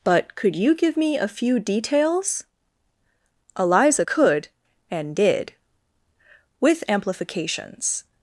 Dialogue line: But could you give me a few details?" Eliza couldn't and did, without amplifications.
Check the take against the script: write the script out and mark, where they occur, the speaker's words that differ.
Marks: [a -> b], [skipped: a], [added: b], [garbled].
But could you give me a few details?" Eliza [couldn't -> could] and did, [without -> with] amplifications.